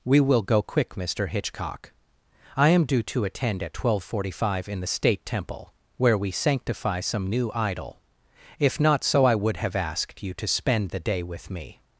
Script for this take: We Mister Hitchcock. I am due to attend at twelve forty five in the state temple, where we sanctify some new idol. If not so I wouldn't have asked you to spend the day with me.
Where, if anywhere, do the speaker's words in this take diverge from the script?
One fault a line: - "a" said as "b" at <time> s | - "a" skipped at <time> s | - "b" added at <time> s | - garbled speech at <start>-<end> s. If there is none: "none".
- "will go quick" added at 0.2 s
- "wouldn't" said as "would" at 9.3 s